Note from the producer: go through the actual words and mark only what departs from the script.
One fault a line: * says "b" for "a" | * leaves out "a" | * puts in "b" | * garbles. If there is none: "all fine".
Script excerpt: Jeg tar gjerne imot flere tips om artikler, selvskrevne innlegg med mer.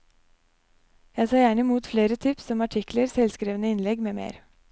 all fine